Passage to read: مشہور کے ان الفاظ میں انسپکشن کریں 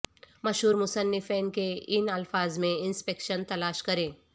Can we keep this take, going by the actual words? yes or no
no